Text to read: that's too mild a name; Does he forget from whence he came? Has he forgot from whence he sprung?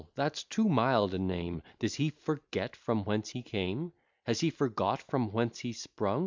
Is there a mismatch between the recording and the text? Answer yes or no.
no